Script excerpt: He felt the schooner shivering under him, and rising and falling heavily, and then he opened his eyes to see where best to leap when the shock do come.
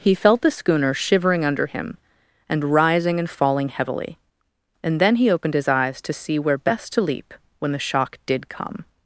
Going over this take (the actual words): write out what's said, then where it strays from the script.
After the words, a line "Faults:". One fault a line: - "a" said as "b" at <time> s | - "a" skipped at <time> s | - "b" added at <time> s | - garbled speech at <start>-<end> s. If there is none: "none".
He felt the schooner shivering under him, and rising and falling heavily, and then he opened his eyes to see where best to leap when the shock did come.
Faults:
- "do" said as "did" at 8.2 s